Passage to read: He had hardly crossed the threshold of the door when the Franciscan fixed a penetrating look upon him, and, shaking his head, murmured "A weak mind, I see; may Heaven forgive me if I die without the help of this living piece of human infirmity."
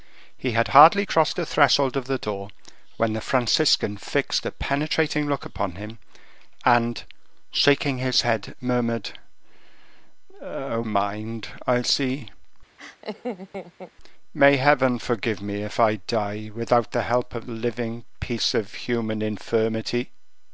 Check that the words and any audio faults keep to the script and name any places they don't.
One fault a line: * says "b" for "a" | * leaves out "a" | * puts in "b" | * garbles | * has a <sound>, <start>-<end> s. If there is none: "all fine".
* leaves out "weak"
* has a laugh, 12.8-13.9 s
* leaves out "this"